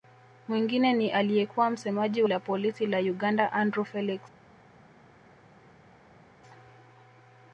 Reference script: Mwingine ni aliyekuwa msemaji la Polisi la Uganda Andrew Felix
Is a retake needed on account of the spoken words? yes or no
no